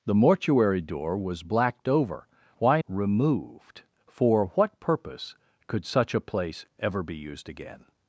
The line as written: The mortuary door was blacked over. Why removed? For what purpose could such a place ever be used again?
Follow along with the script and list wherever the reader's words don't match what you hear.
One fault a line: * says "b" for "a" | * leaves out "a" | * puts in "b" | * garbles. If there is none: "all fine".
all fine